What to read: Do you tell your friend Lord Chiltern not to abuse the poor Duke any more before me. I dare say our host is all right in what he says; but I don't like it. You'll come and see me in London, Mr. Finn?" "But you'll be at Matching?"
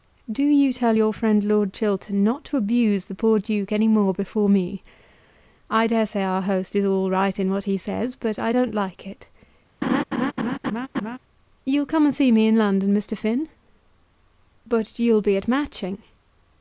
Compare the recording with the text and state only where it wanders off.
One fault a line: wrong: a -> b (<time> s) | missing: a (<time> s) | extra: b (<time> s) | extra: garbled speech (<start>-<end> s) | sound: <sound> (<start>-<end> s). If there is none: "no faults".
sound: laugh (9.8-11.2 s)